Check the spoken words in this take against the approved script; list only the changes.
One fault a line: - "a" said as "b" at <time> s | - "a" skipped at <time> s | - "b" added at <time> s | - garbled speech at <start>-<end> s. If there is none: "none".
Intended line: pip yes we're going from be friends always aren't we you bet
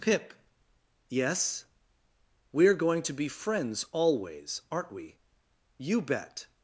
- "from" said as "to" at 3.0 s